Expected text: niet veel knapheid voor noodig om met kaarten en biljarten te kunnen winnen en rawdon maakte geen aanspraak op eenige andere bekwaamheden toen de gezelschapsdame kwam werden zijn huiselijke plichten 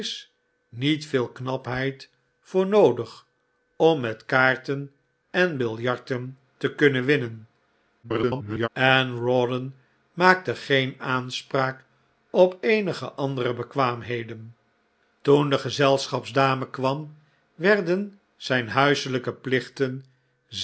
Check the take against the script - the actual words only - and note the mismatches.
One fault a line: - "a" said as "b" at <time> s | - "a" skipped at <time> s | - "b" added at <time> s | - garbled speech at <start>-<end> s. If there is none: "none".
- garbled speech at 8.0-8.7 s